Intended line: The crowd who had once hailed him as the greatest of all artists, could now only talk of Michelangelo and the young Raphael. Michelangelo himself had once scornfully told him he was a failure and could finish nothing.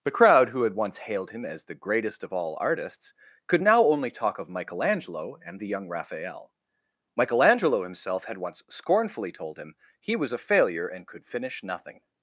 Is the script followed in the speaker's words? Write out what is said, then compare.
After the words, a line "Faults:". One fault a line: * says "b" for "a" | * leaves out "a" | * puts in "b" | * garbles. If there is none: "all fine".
The crowd who had once hailed him as the greatest of all artists, could now only talk of Michelangelo and the young Raphael. Michelangelo himself had once scornfully told him he was a failure and could finish nothing.
Faults:
all fine